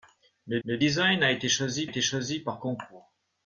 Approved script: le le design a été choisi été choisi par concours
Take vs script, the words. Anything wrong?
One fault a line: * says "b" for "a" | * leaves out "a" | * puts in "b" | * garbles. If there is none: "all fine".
all fine